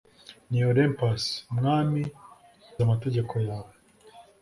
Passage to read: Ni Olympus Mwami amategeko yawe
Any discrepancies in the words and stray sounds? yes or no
no